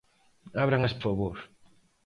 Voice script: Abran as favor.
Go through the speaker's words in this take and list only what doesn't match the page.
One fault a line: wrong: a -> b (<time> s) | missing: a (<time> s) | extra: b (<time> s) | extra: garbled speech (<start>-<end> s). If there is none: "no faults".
no faults